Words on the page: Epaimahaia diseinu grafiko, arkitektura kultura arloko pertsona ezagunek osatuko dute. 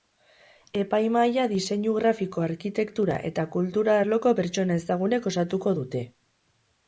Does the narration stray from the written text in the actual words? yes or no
yes